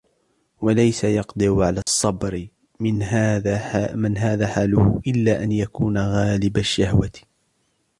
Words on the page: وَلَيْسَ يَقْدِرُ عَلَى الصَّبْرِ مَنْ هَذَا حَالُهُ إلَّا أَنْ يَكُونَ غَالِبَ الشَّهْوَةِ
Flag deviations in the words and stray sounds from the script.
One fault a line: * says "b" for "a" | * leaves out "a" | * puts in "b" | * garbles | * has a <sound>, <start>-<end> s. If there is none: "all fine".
* has a dropout, 1.8-1.9 s